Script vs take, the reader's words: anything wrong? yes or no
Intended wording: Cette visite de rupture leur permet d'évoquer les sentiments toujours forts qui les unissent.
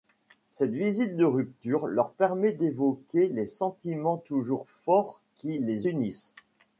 no